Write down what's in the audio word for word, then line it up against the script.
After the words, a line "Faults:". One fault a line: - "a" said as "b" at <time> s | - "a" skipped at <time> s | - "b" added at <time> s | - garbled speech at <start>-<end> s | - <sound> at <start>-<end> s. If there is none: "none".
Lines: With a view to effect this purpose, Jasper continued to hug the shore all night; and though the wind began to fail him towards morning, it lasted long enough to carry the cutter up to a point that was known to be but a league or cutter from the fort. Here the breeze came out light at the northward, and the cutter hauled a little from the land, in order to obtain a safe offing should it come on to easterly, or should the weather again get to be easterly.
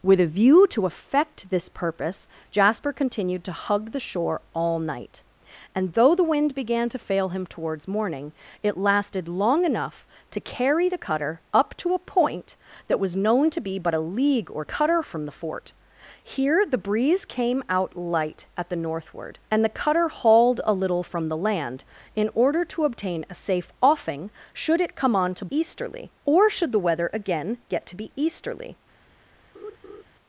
With a view to effect this purpose, Jasper continued to hug the shore all night; and though the wind began to fail him towards morning, it lasted long enough to carry the cutter up to a point that was known to be but a league or cutter from the fort. Here the breeze came out light at the northward, and the cutter hauled a little from the land, in order to obtain a safe offing should it come on to easterly, or should the weather again get to be easterly.
Faults:
- laugh at 29.6-30.0 s